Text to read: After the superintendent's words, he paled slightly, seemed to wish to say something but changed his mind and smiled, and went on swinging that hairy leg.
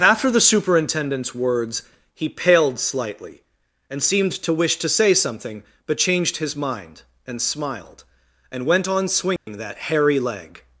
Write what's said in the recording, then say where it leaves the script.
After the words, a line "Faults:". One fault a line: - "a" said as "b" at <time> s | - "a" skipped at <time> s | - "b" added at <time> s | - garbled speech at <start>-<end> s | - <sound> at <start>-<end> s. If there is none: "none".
After the superintendent's words, he paled slightly, and seemed to wish to say something but changed his mind and smiled, and went on swinging that hairy leg.
Faults:
- "and" added at 3.9 s
- dropout at 9.4-9.5 s